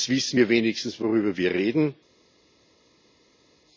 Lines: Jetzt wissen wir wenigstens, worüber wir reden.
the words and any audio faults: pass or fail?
pass